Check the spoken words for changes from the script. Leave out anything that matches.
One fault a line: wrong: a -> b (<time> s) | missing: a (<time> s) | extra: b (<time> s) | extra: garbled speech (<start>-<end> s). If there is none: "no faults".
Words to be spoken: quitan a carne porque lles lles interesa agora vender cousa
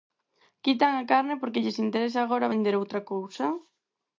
missing: lles (1.8 s)
extra: outra (2.8 s)